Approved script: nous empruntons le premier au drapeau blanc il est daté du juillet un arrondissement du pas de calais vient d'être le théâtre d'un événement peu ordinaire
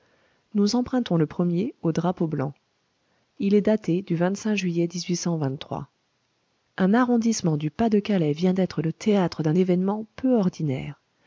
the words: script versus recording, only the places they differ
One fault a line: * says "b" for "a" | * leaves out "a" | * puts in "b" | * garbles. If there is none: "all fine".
all fine